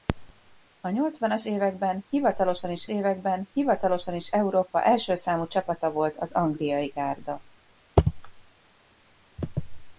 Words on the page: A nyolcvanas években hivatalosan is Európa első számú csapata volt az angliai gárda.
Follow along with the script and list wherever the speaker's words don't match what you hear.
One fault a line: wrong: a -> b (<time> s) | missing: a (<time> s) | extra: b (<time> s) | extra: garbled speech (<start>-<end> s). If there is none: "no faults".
extra: években hivatalosan is (2.9 s)